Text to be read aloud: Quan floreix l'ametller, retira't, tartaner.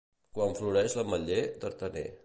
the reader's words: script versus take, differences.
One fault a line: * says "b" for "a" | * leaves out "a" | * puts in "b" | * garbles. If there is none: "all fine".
* leaves out "retira't"